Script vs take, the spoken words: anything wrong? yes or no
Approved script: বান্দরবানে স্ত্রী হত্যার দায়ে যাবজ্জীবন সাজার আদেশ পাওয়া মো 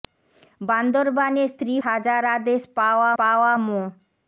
yes